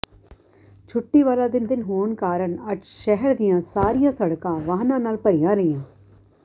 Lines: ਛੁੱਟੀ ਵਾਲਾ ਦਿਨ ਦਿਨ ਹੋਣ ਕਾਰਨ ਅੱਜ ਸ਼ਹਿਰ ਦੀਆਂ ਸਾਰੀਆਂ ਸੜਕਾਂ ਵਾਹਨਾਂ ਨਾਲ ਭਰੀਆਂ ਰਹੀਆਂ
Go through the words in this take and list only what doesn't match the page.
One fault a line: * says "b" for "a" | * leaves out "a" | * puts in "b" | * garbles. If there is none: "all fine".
all fine